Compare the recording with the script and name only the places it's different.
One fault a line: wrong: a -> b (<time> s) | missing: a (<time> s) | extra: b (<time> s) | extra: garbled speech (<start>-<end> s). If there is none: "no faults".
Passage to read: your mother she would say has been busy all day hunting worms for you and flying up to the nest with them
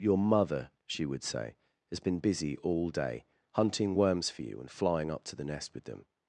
no faults